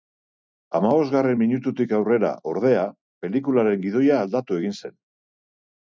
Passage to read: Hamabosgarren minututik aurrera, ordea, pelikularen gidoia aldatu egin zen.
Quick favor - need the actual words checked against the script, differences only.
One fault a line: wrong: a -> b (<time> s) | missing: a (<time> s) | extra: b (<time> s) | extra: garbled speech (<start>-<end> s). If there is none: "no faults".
no faults